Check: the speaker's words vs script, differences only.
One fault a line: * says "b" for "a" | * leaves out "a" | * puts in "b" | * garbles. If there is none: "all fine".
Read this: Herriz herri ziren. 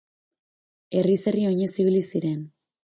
* puts in "oinez ibili"